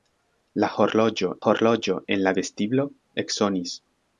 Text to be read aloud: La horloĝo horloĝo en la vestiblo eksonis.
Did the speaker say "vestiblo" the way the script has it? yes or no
yes